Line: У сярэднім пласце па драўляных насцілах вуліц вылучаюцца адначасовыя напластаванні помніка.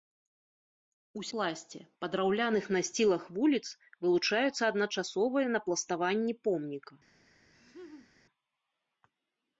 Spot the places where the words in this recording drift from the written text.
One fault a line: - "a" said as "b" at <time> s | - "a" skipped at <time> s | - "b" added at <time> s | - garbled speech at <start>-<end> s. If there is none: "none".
- "сярэднім" skipped at 1.2 s